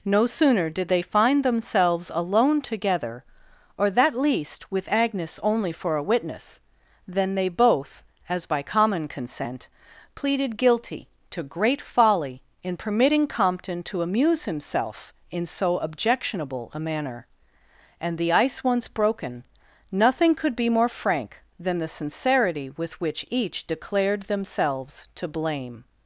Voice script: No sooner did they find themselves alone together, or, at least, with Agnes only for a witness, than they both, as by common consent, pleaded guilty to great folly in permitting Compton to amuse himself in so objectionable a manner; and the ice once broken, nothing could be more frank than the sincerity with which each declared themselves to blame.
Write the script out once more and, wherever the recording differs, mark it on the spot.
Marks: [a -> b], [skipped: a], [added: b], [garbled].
No sooner did they find themselves alone together, or, [at -> that] least, with Agnes only for a witness, than they both, as by common consent, pleaded guilty to great folly in permitting Compton to amuse himself in so objectionable a manner; and the ice once broken, nothing could be more frank than the sincerity with which each declared themselves to blame.